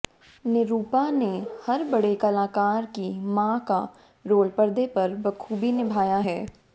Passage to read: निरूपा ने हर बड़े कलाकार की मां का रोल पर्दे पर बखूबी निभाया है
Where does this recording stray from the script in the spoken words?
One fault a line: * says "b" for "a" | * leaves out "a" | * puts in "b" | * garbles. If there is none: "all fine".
all fine